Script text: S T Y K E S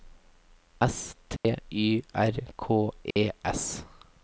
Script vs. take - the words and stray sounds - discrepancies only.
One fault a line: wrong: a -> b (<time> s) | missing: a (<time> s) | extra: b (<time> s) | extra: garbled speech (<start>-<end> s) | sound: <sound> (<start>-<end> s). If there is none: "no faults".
sound: dropout (1.4-1.4 s)
extra: R (2.1 s)
sound: dropout (3.1-3.2 s)